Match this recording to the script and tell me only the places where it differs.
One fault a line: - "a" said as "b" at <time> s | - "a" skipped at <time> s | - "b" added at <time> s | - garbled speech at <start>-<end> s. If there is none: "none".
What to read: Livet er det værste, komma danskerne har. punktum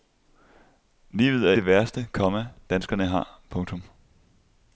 none